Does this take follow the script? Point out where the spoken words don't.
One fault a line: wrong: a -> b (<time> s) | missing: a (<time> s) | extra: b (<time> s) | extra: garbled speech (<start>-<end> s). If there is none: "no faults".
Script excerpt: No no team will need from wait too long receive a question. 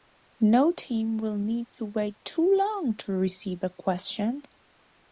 missing: no (0.7 s)
wrong: from -> to (1.7 s)
extra: to (3.0 s)